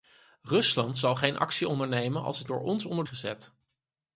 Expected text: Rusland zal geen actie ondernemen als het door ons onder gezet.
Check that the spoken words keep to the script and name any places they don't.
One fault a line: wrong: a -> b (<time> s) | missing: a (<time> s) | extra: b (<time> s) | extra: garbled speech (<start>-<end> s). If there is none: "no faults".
no faults